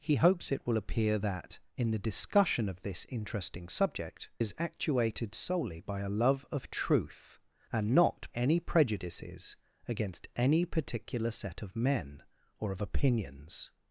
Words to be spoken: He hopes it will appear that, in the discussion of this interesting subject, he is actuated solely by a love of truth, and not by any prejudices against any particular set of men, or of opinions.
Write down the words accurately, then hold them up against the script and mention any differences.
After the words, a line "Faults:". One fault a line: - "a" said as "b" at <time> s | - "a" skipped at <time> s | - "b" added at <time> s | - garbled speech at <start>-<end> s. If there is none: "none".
He hopes it will appear that, in the discussion of this interesting subject, is actuated solely by a love of truth, and not any prejudices against any particular set of men, or of opinions.
Faults:
- "he" skipped at 4.3 s
- "by" skipped at 8.3 s